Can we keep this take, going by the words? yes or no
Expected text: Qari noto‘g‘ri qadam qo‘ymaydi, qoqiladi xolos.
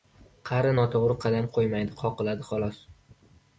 yes